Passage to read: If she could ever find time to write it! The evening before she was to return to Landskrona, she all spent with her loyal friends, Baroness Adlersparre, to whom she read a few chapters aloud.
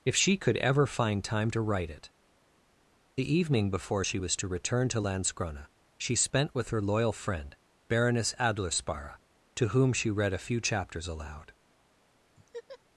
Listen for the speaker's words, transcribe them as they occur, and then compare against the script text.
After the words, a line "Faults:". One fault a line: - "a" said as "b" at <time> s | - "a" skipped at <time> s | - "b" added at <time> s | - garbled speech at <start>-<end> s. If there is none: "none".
If she could ever find time to write it! The evening before she was to return to Landskrona, she spent with her loyal friend, Baroness Adlersparre, to whom she read a few chapters aloud.
Faults:
- "all" skipped at 6.1 s
- "friends" said as "friend" at 7.1 s